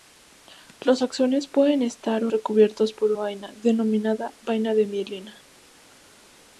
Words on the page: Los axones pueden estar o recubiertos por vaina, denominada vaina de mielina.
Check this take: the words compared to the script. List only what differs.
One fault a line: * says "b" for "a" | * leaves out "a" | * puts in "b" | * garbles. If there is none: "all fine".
all fine